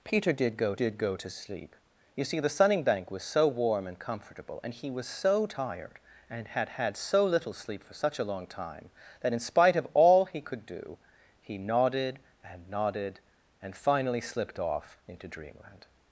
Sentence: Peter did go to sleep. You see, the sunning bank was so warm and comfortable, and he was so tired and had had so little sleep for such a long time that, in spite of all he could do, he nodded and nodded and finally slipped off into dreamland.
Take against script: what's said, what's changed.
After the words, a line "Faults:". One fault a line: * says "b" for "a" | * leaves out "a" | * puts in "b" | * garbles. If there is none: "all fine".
Peter did go did go to sleep. You see, the sunning bank was so warm and comfortable, and he was so tired and had had so little sleep for such a long time that, in spite of all he could do, he nodded and nodded and finally slipped off into dreamland.
Faults:
* puts in "did go"